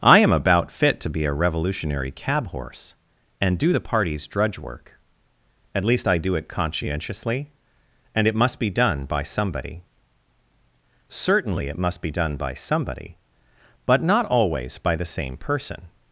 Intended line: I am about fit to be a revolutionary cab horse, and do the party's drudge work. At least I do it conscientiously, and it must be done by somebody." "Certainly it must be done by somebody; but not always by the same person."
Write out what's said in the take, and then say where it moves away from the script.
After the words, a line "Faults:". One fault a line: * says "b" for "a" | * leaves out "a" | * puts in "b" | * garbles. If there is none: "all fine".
I am about fit to be a revolutionary cab horse, and do the party's drudge work. At least I do it conscientiously, and it must be done by somebody." "Certainly it must be done by somebody; but not always by the same person."
Faults:
all fine